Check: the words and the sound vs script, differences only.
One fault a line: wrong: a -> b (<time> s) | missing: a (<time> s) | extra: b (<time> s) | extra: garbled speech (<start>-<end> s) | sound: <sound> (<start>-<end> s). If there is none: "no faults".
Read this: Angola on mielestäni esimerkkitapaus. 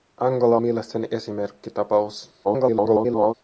missing: on (0.6 s)
extra: garbled speech (2.4-3.3 s)